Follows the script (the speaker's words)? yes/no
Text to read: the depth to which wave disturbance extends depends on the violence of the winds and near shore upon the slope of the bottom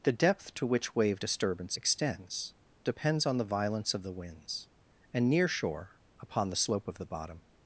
yes